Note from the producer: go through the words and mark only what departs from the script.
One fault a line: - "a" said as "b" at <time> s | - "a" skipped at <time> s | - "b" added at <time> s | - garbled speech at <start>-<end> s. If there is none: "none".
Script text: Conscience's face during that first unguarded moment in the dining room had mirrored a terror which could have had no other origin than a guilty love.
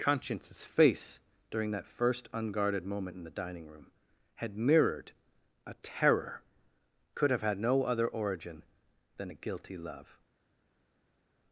- "which" skipped at 6.4 s